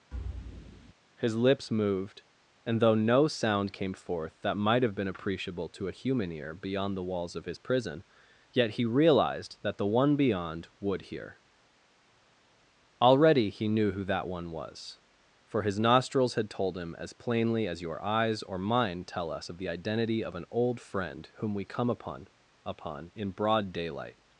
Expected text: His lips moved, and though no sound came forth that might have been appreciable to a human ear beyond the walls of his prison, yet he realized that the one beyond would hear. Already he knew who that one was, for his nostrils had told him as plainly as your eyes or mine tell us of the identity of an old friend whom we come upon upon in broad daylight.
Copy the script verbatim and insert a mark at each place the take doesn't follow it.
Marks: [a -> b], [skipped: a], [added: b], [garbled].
His lips moved, and though no sound came forth that might have been appreciable to a human ear beyond the walls of his prison, yet he realized that the one beyond would hear. Already he knew who that one was, for his nostrils had told him as plainly as your eyes or mine tell us of the identity of an old friend whom we come upon upon in broad daylight.